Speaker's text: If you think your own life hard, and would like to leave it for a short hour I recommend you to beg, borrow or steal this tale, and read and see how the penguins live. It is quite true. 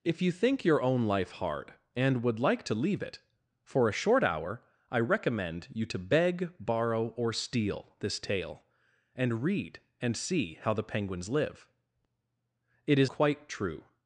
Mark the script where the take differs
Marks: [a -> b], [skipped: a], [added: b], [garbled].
If you think your own life hard, and would like to leave it for a short hour I recommend you to beg, borrow or steal this tale, and read and see how the penguins live. It is quite true.